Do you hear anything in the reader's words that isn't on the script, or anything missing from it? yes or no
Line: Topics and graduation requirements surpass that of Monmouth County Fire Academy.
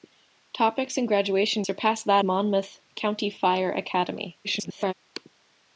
yes